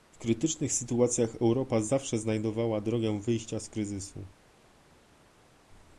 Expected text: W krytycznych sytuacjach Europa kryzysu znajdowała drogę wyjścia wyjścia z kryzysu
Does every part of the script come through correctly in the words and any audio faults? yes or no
no